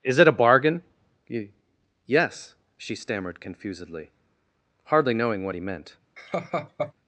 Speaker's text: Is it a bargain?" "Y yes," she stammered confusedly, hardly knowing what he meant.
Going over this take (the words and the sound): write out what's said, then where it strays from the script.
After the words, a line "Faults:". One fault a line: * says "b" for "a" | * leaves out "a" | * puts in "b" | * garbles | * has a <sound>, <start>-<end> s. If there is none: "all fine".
Is it a bargain?" "Y yes," she stammered confusedly, hardly knowing what he meant.
Faults:
* has a laugh, 6.2-6.9 s